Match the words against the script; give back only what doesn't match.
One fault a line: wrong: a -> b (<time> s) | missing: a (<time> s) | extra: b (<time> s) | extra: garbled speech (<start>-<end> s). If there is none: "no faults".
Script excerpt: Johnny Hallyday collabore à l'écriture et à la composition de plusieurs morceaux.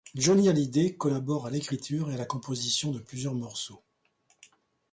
no faults